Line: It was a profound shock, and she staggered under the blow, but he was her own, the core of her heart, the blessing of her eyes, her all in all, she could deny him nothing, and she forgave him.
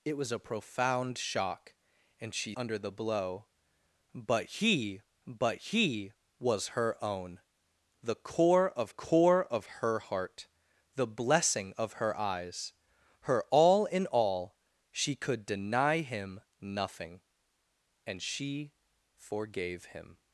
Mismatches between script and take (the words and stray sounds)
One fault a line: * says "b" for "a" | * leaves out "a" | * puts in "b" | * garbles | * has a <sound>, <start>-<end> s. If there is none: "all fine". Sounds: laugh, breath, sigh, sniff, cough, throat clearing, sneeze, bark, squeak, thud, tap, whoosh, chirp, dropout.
* leaves out "staggered"
* puts in "but he"
* puts in "core of"